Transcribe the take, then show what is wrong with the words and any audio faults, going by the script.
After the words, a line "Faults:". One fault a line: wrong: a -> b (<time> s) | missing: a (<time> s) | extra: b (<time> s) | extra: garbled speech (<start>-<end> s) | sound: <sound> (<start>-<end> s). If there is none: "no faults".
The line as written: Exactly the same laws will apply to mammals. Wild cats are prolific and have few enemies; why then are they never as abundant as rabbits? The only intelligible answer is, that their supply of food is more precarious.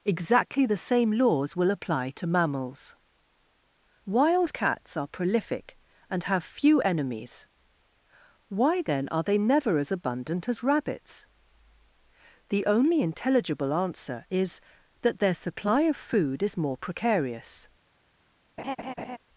Exactly the same laws will apply to mammals. Wild cats are prolific and have few enemies; why then are they never as abundant as rabbits? The only intelligible answer is, that their supply of food is more precarious.
Faults:
sound: laugh (18.6-19.2 s)